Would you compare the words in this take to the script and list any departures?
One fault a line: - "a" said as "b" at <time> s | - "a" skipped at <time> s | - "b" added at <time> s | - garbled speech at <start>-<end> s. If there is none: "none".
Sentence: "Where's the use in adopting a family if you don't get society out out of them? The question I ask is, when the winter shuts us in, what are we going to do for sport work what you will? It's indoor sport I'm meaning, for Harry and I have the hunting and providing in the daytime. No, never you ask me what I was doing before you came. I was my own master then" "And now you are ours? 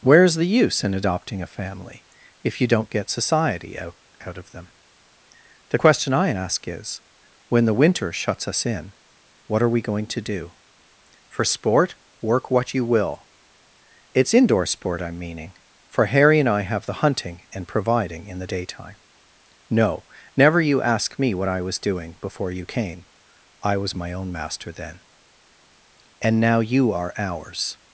none